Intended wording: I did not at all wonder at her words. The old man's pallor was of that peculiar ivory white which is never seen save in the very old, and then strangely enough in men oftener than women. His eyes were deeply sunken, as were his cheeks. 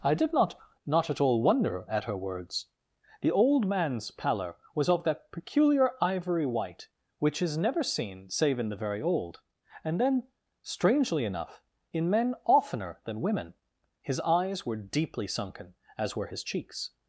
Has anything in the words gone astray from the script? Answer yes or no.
yes